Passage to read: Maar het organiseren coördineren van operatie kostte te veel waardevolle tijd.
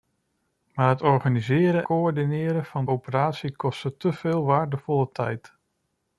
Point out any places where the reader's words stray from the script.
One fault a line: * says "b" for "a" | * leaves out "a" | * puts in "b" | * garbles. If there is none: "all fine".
all fine